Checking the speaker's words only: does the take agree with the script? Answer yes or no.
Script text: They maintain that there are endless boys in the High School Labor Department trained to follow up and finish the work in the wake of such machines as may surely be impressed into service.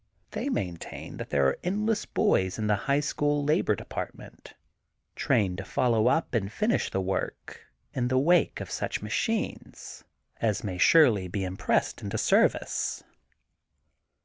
yes